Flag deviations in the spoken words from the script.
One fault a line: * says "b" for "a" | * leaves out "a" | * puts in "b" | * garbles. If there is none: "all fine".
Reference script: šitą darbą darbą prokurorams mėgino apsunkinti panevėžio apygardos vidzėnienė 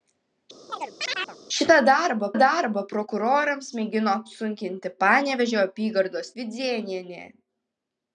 all fine